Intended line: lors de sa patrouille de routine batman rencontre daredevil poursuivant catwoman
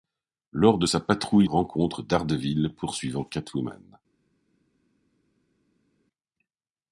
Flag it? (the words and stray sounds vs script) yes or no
yes